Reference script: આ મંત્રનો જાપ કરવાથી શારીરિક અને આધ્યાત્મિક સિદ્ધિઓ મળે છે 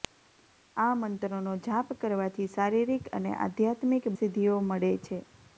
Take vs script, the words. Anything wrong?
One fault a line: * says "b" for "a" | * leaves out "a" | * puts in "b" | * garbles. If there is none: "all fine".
all fine